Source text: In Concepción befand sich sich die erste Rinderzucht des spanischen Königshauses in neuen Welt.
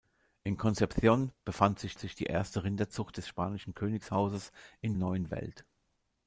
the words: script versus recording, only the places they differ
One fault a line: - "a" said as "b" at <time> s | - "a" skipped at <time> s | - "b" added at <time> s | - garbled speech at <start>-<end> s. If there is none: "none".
none